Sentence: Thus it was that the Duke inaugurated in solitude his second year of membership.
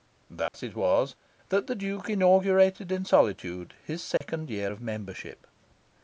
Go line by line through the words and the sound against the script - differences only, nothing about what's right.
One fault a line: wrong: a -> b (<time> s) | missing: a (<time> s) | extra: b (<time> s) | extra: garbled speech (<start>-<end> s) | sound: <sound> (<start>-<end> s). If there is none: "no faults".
sound: dropout (0.5-0.5 s)
sound: dropout (4.2-4.2 s)